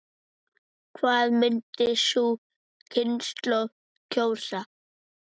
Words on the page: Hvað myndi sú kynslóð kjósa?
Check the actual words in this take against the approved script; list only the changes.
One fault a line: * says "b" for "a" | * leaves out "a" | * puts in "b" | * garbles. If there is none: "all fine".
all fine